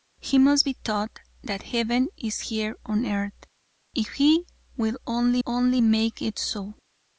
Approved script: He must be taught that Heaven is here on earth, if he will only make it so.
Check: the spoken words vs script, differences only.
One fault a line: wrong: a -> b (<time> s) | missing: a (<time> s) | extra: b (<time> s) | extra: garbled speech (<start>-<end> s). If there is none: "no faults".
extra: only (5.4 s)